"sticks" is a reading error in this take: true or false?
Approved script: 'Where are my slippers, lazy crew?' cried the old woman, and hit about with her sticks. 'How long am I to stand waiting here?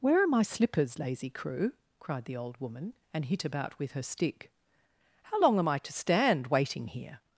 true